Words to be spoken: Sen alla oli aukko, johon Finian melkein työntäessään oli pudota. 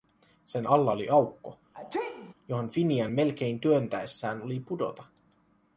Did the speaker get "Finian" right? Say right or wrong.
right